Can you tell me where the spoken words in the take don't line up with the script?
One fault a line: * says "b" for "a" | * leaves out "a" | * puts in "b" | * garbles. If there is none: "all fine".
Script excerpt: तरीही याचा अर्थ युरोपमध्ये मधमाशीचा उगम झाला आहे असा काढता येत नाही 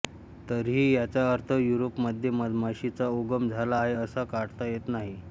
all fine